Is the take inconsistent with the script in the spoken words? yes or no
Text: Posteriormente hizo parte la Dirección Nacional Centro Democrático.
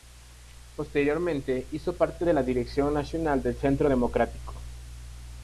yes